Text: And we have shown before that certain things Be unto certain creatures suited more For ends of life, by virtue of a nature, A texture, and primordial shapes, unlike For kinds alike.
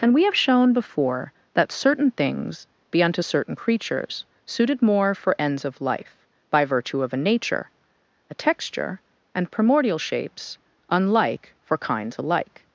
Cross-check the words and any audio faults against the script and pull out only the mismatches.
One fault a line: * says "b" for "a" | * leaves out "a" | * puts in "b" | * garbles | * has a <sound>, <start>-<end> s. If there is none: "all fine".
all fine